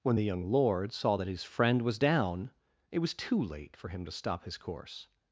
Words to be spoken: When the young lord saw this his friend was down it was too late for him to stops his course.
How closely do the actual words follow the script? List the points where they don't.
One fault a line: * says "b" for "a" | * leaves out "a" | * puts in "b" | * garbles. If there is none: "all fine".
* says "that" for "this"
* says "stop" for "stops"